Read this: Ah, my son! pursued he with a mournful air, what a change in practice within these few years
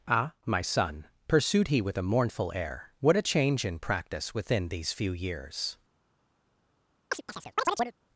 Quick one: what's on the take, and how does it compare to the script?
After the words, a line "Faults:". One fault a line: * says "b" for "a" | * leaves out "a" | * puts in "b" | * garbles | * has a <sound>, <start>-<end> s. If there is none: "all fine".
Ah, my son! pursued he with a mournful air, what a change in practice within these few years
Faults:
* has a chirp, 7.1-7.9 s